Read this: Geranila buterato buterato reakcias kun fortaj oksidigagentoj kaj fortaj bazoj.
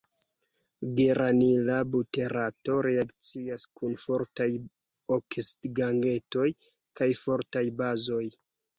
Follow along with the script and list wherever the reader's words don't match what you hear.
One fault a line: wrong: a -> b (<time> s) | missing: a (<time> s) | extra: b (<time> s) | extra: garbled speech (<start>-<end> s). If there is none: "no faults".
missing: buterato (2.8 s)